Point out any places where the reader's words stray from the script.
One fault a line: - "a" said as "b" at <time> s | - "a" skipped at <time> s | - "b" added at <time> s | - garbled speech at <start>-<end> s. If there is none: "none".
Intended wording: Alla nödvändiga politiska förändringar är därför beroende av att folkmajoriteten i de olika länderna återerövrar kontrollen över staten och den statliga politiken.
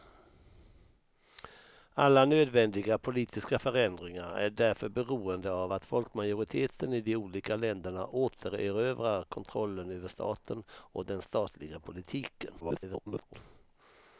- garbled speech at 12.6-13.3 s